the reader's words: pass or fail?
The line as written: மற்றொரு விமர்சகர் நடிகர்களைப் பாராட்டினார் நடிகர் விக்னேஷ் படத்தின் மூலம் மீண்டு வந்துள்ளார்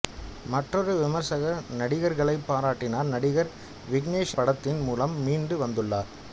pass